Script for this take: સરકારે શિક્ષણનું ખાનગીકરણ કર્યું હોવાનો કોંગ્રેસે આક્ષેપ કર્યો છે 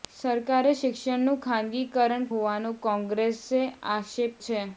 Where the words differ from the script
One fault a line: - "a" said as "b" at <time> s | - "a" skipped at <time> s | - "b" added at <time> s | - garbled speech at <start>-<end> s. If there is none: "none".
- "કર્યું" skipped at 2.2 s
- "કર્યો" skipped at 4.4 s